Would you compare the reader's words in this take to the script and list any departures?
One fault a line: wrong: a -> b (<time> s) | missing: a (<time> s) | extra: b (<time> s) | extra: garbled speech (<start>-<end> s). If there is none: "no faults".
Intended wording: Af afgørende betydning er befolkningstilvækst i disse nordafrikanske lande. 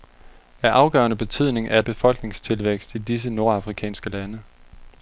no faults